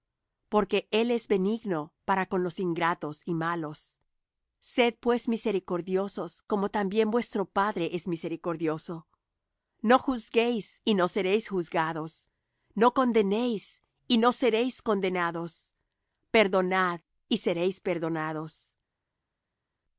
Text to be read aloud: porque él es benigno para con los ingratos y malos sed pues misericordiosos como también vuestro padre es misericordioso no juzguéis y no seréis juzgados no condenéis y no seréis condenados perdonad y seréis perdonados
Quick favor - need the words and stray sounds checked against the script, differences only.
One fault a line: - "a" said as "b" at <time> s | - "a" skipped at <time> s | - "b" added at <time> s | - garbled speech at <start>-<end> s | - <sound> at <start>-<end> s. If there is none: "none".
none